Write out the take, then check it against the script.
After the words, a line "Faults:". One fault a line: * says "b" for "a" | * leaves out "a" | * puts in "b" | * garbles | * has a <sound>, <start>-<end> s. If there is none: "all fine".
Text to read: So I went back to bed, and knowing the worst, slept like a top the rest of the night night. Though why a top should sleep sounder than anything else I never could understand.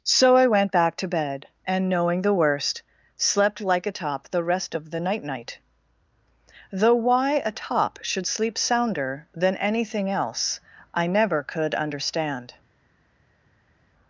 So I went back to bed, and knowing the worst, slept like a top the rest of the night night. Though why a top should sleep sounder than anything else I never could understand.
Faults:
all fine